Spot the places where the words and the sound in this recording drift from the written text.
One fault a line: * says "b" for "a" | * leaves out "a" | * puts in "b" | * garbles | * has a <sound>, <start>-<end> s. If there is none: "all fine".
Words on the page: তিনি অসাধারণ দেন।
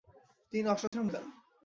* has a dropout, 0.9-0.9 s